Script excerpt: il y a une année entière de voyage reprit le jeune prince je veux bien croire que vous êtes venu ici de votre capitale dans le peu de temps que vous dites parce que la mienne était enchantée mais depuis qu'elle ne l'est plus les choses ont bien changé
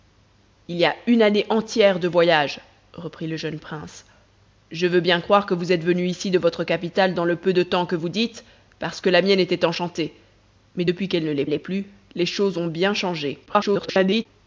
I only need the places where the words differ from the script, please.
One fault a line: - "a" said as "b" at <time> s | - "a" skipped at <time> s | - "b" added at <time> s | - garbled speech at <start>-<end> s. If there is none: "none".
- "l'est" added at 11.5 s
- garbled speech at 13.5-14.3 s